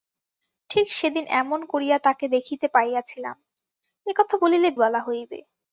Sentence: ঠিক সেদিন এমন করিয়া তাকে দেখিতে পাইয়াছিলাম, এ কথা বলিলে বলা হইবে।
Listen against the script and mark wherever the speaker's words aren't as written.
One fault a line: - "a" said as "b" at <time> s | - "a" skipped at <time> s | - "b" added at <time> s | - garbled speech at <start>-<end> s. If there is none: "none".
none